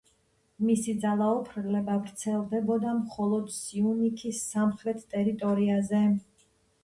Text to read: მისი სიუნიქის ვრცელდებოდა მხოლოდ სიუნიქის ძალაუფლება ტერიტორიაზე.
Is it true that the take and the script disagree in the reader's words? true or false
true